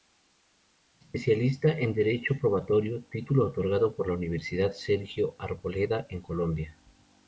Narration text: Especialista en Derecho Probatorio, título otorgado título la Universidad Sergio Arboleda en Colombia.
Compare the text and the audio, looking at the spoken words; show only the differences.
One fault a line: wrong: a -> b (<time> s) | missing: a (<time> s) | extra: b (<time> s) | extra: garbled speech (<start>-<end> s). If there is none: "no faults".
wrong: título -> por (4.0 s)